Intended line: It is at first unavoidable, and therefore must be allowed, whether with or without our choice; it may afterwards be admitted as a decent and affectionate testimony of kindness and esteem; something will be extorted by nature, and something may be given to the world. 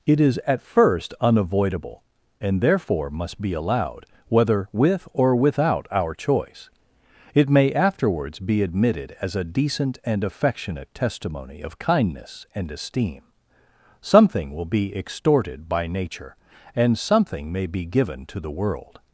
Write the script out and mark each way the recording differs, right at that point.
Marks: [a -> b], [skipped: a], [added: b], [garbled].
It is at first unavoidable, and therefore must be allowed, whether with or without our choice; it may afterwards be admitted as a decent and affectionate testimony of kindness and esteem; something will be extorted by nature, and something may be given to the world.